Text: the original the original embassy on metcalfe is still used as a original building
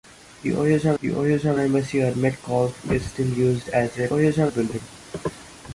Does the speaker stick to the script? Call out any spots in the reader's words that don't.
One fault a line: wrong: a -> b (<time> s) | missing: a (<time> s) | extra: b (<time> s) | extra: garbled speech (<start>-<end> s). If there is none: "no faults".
no faults